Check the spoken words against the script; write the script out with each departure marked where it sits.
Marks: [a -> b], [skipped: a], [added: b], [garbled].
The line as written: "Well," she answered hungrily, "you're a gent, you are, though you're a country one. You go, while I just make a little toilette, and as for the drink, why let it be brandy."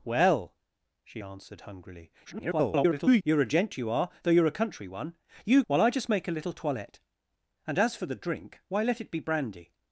"Well," she answered hungrily, [garbled] "you're a gent, you are, though you're a country one. You [skipped: go,] while I just make a little toilette, and as for the drink, why let it be brandy."